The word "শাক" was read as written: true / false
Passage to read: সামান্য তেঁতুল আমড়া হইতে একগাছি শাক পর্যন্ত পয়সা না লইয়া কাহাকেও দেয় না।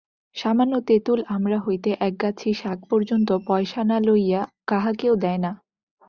true